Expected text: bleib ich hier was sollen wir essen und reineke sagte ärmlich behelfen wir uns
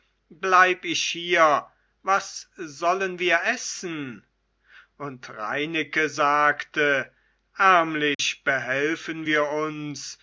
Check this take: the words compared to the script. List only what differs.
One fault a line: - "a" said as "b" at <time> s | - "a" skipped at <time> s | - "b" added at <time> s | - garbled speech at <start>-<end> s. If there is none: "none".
none